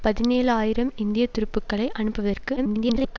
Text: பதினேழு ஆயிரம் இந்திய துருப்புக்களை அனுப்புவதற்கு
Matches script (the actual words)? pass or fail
fail